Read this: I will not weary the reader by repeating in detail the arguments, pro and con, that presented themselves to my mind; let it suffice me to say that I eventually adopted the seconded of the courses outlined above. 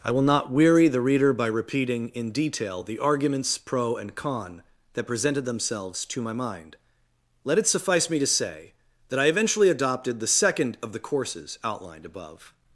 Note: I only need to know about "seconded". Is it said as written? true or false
false